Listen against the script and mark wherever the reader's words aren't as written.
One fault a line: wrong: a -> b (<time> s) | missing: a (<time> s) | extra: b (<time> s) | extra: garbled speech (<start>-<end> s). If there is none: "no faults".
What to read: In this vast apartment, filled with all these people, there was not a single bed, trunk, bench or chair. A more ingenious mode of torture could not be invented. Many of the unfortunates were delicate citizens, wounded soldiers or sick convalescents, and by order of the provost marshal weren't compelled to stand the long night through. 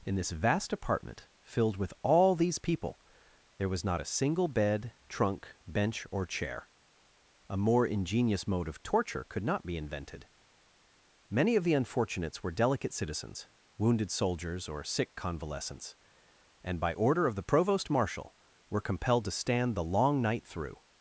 wrong: weren't -> were (18.7 s)